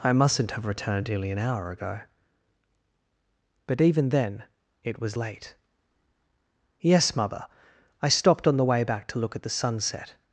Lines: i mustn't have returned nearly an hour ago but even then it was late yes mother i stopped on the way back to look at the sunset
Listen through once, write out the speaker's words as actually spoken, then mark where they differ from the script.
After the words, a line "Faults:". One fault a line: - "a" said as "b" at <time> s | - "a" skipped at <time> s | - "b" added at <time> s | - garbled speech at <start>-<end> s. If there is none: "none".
i mustn't have returned nearly an hour ago but even then it was late yes mother i stopped on the way back to look at the sunset
Faults:
none